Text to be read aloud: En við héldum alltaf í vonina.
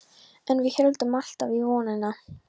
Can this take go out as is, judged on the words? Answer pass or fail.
pass